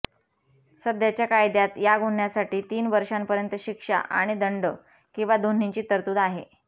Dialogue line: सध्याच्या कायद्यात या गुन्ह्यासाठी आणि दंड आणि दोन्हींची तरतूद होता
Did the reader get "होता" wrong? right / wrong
wrong